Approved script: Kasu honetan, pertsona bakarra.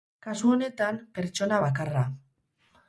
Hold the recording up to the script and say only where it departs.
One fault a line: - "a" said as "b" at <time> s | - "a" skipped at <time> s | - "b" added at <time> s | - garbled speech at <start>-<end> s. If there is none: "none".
none